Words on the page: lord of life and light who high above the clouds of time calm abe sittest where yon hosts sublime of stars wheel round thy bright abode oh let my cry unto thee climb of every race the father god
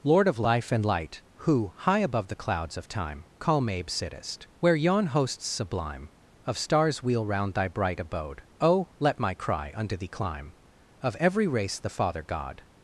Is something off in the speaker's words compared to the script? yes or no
no